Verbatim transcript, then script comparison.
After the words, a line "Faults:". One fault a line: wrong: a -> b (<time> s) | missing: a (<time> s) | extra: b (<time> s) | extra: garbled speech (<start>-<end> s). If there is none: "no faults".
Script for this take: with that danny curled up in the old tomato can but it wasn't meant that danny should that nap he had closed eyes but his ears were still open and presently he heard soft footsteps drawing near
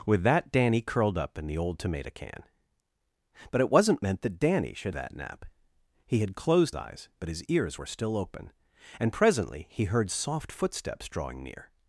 with that danny curled up in the old tomato can but it wasn't meant that danny should that nap he had closed eyes but his ears were still open and presently he heard soft footsteps drawing near
Faults:
no faults